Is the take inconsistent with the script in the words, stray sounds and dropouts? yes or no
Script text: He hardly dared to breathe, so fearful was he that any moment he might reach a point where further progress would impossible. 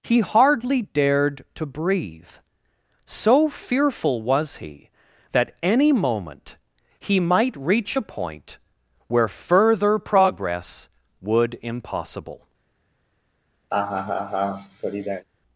yes